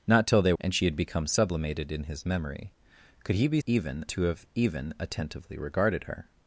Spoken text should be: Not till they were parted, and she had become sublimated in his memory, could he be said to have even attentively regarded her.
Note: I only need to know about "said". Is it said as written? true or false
false